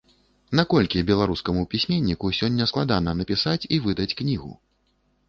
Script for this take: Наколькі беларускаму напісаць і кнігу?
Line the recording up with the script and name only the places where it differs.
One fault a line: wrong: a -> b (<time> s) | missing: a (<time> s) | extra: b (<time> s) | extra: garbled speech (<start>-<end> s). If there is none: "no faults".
extra: пісьменніку сёння складана (1.7 s)
extra: выдаць (3.9 s)